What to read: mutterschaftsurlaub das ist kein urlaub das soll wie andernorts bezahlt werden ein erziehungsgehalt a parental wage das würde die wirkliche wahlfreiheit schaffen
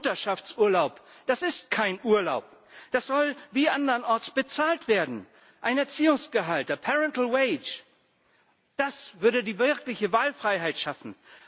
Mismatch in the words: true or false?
false